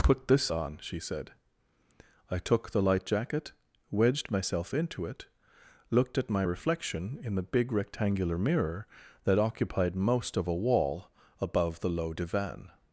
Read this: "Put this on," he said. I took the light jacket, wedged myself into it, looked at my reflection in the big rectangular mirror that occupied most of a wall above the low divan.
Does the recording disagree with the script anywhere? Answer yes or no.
yes